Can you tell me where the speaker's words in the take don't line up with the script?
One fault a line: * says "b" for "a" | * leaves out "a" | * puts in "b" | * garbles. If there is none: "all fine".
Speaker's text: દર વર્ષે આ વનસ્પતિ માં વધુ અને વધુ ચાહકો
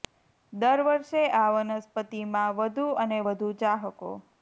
all fine